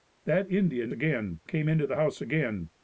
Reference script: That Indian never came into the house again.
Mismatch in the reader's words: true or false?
true